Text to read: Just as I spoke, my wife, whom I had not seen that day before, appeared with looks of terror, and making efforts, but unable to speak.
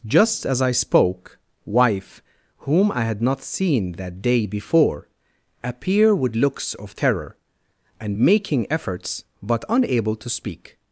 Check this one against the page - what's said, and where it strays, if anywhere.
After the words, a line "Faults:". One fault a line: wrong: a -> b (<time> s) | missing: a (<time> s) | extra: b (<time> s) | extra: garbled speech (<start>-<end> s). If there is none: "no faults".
Just as I spoke, wife, whom I had not seen that day before, appear with looks of terror, and making efforts, but unable to speak.
Faults:
missing: my (1.4 s)
wrong: appeared -> appear (5.6 s)